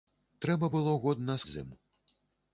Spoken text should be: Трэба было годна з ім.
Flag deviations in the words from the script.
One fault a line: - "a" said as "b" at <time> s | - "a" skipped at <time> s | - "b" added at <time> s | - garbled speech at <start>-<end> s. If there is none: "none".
none